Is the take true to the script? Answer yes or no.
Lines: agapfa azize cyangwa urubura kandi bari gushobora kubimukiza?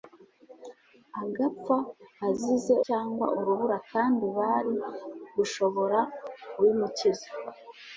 yes